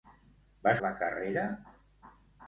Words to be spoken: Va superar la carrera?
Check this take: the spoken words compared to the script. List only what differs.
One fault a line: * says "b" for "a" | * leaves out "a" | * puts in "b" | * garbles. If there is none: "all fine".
* leaves out "superar"